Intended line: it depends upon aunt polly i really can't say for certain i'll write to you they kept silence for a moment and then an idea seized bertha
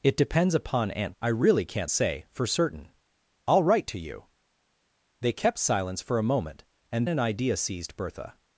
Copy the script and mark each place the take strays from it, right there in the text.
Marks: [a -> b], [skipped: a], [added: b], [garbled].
it depends upon aunt [skipped: polly] i really can't say for certain i'll write to you they kept silence for a moment and [skipped: then] an idea seized bertha